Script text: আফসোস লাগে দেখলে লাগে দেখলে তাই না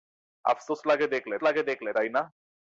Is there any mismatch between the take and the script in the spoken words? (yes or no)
no